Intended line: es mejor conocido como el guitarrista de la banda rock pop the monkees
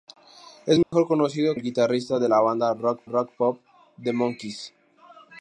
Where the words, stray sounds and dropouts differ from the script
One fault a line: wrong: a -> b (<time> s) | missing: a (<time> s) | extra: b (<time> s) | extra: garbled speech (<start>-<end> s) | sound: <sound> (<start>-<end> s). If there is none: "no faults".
sound: dropout (0.8-0.9 s)
missing: como (1.6 s)
extra: rock (3.0 s)